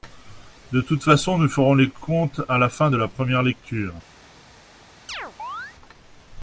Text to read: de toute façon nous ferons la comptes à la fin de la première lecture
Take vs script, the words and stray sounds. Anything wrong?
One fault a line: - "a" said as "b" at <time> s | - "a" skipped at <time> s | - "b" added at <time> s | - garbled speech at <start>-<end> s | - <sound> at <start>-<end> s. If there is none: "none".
- "la" said as "les" at 1.8 s
- chirp at 5.1-5.8 s